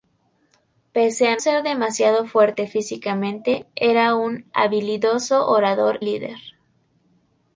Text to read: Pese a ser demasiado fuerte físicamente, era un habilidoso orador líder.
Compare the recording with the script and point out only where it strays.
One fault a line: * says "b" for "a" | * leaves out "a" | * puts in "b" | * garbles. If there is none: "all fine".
all fine